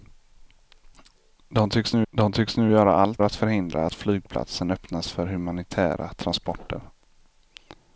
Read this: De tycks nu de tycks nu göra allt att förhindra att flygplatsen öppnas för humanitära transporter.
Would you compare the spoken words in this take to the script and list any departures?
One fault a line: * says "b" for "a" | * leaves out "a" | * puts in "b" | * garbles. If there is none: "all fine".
all fine